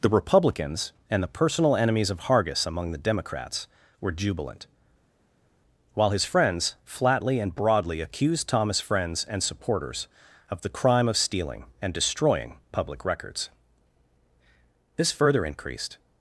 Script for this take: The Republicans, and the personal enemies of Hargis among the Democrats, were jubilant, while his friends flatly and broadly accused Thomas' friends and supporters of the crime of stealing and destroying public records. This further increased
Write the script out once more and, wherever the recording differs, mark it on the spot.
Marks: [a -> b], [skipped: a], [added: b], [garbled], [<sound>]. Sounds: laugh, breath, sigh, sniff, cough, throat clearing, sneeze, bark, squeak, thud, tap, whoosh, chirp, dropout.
The Republicans, and the personal enemies of Hargis among the Democrats, were jubilant, while his friends flatly and broadly accused Thomas' friends and supporters of the crime of stealing and destroying public records. This further increased